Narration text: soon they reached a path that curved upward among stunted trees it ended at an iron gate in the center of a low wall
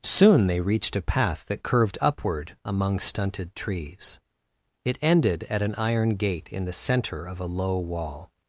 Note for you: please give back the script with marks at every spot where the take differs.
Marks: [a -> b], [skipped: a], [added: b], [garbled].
soon they reached a path that curved upward among stunted trees it ended at an iron gate in the center of a low wall